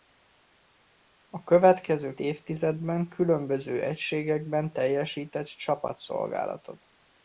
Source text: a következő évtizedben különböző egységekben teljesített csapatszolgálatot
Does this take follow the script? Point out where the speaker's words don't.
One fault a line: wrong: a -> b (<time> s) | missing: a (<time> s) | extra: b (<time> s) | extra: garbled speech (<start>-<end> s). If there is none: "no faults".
no faults